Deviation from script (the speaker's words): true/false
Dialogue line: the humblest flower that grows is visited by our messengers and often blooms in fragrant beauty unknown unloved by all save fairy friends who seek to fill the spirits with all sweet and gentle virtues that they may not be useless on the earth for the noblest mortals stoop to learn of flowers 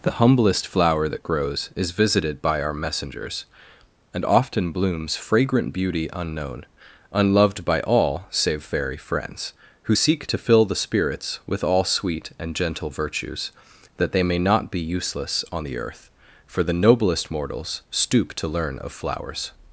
true